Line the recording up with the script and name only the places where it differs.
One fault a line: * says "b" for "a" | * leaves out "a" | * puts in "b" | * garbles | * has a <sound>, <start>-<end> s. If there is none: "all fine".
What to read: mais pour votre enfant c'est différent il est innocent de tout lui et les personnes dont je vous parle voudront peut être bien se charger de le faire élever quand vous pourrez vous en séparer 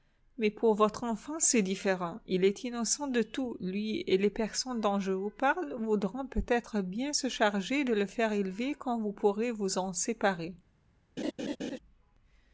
* has a laugh, 11.2-11.8 s